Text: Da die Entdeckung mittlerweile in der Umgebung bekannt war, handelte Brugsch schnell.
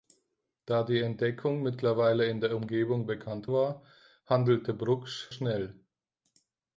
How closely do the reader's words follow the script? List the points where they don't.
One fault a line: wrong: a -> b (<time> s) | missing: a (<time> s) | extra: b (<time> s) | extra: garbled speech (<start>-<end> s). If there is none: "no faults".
no faults